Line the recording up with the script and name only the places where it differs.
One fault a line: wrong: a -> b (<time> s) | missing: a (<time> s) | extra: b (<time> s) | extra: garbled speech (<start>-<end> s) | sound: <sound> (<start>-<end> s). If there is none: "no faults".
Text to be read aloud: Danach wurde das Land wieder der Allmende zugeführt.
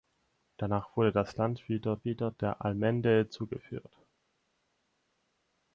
extra: wieder (2.1 s)